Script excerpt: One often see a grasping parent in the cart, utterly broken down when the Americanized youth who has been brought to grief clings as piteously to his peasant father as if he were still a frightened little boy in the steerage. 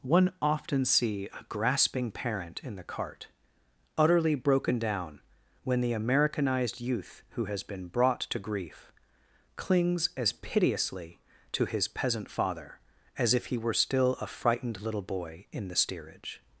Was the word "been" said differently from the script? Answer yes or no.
no